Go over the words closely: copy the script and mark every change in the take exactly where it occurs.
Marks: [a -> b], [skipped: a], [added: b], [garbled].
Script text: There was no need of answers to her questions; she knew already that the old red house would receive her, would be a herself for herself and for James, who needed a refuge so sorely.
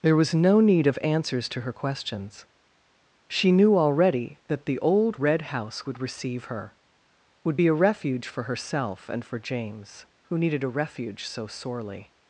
There was no need of answers to her questions; she knew already that the old red house would receive her, would be a [herself -> refuge] for herself and for James, who needed a refuge so sorely.